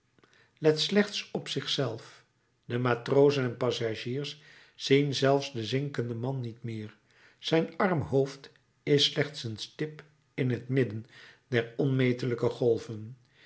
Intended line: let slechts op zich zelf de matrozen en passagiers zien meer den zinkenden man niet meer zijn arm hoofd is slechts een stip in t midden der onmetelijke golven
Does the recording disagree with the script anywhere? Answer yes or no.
yes